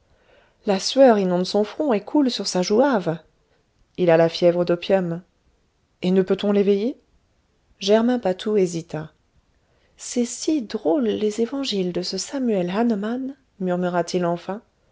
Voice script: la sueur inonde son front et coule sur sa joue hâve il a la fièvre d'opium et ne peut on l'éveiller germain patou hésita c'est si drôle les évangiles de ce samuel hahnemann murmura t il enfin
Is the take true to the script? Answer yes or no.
yes